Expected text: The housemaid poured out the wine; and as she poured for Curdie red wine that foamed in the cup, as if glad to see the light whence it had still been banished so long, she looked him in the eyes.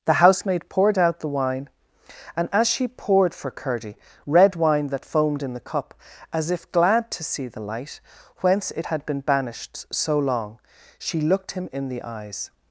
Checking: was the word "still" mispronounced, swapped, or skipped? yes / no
yes